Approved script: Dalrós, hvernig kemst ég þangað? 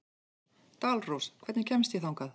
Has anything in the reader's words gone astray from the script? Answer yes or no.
no